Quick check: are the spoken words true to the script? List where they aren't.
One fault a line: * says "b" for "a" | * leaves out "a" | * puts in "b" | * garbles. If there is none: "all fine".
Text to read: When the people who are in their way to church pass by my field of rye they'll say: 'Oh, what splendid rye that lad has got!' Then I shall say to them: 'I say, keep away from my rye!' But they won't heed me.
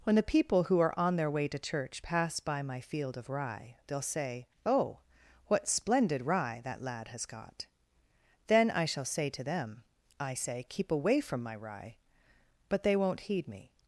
* says "on" for "in"